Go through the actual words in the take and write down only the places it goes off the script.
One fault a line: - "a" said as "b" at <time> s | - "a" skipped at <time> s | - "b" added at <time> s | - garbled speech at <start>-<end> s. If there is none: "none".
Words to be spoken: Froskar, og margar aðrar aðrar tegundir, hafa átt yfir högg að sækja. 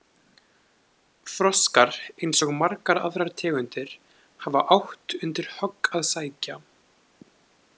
- "eins" added at 2.3 s
- "aðrar" skipped at 3.3 s
- "yfir" said as "undir" at 5.3 s